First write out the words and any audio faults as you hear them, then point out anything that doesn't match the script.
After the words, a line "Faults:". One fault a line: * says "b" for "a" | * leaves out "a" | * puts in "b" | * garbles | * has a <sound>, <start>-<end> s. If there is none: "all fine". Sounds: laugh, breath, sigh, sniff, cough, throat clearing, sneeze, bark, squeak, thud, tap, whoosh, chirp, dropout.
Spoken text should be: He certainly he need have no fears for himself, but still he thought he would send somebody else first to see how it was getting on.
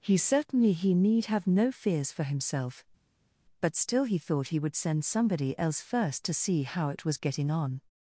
He certainly he need have no fears for himself, but still he thought he would send somebody else first to see how it was getting on.
Faults:
all fine